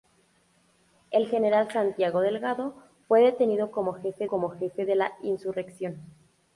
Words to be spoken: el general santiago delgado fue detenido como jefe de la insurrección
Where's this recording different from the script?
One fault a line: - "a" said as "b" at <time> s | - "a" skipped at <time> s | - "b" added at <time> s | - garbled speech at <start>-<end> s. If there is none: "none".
- "como jefe" added at 4.2 s